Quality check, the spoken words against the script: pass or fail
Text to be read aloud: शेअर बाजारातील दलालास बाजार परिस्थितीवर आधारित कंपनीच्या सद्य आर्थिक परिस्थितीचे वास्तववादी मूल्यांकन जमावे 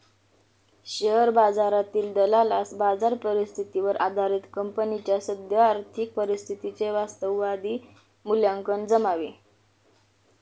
pass